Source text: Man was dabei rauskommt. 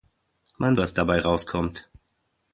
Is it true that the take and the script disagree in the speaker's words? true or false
false